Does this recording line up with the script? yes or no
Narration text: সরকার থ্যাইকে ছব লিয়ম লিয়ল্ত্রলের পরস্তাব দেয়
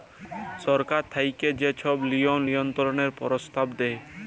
no